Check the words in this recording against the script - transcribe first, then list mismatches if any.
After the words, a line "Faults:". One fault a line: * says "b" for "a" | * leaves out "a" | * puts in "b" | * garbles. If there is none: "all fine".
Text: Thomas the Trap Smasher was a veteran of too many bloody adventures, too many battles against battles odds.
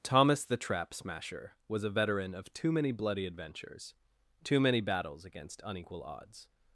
Thomas the Trap Smasher was a veteran of too many bloody adventures, too many battles against unequal odds.
Faults:
* says "unequal" for "battles"